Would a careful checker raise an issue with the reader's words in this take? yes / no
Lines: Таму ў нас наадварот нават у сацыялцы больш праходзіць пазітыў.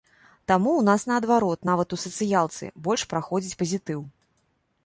no